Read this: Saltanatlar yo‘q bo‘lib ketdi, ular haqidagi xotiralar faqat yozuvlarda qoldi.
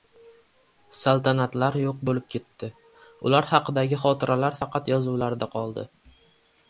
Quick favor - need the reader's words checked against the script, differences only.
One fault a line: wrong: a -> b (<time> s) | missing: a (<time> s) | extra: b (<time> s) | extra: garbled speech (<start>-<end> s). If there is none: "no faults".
no faults